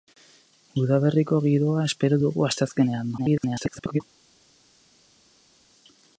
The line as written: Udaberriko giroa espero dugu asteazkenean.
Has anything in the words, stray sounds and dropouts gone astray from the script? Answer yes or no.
yes